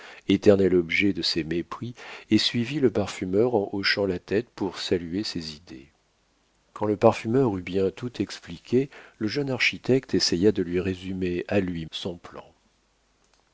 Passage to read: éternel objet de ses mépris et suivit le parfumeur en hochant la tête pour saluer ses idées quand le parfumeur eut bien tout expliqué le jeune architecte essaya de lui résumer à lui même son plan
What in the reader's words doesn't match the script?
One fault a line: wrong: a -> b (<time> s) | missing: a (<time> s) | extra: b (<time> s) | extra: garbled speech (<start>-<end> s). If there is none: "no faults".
missing: même (11.9 s)